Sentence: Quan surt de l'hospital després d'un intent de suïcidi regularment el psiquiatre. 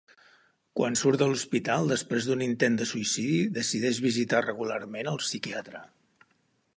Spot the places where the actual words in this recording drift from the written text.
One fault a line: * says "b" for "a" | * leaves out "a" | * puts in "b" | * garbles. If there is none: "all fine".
* puts in "decideix visitar"